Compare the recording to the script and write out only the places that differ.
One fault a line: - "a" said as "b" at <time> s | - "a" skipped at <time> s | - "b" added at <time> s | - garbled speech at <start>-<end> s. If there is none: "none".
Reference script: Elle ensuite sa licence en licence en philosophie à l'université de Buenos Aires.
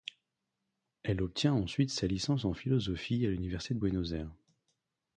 - "obtient" added at 1.2 s
- "licence en" skipped at 2.5 s